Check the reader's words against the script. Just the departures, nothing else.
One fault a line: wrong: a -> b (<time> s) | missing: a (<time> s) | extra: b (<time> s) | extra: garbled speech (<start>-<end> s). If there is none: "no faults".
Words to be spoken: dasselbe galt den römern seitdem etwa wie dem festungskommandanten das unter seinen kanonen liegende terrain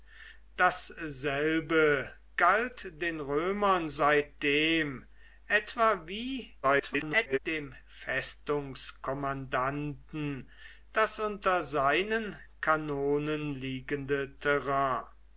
extra: garbled speech (6.6-7.4 s)